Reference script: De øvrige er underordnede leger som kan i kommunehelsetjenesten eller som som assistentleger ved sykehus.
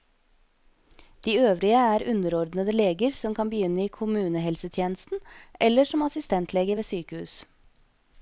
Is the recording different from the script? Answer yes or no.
yes